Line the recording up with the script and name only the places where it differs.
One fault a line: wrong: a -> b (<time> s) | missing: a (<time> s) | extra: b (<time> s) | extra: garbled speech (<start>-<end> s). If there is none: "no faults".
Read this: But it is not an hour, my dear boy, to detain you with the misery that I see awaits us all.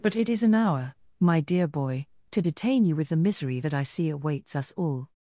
missing: not (0.4 s)